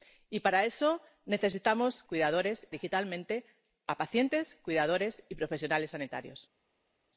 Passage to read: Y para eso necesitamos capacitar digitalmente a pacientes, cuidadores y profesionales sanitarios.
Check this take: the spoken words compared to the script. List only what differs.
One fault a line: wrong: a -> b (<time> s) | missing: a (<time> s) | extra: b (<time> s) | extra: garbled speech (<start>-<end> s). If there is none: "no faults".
wrong: capacitar -> cuidadores (2.1 s)